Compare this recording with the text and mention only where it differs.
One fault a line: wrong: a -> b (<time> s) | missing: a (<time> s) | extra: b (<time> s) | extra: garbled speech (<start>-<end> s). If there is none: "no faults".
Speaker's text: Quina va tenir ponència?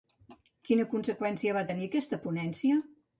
extra: conseqüència (0.9 s)
extra: aquesta (1.9 s)